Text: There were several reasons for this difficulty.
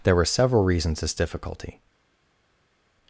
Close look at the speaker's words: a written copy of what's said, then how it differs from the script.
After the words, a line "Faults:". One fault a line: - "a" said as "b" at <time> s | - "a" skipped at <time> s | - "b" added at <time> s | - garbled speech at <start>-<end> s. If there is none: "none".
There were several reasons this difficulty.
Faults:
- "for" skipped at 1.0 s